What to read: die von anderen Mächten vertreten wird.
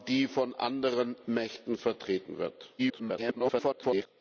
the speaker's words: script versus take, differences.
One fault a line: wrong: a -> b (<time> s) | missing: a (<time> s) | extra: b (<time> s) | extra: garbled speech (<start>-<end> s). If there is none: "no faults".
extra: garbled speech (2.8-4.1 s)